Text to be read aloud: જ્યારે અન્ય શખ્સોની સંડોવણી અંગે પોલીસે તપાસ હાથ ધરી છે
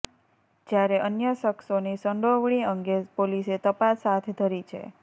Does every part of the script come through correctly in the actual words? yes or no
yes